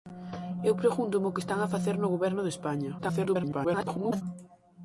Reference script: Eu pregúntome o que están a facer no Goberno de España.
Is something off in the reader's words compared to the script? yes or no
yes